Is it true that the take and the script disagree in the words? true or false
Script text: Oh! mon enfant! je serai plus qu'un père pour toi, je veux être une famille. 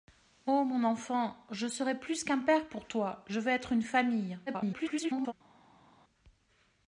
true